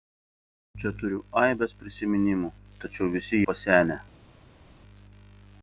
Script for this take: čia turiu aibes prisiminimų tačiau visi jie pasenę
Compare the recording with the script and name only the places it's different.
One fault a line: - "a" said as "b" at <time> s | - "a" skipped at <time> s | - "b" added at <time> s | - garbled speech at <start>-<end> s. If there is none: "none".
- "jie" skipped at 3.4 s